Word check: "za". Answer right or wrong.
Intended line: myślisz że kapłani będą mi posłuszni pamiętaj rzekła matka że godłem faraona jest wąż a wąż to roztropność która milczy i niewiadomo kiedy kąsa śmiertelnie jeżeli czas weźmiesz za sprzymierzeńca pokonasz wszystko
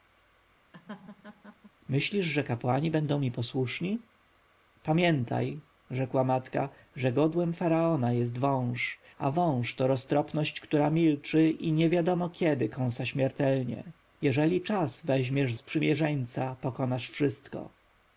wrong